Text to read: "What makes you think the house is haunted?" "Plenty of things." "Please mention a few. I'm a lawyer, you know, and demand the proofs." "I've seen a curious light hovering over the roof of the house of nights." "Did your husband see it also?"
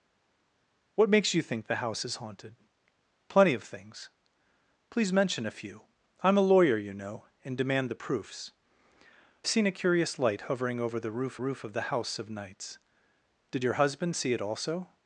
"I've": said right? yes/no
no